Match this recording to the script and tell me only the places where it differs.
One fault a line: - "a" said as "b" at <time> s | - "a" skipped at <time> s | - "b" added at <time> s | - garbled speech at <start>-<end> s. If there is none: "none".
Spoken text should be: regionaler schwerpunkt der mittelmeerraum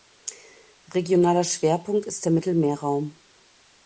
- "ist" added at 2.1 s